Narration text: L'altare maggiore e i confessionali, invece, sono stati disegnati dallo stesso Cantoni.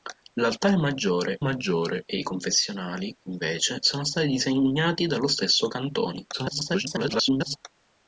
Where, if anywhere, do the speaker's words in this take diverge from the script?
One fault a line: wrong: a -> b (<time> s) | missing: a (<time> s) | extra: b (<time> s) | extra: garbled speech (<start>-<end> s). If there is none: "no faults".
extra: maggiore (1.4 s)
extra: garbled speech (6.3-7.6 s)